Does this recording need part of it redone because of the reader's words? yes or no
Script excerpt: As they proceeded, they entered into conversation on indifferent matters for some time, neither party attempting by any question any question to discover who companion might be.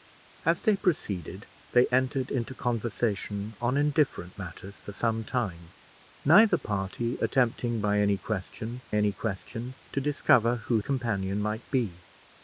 no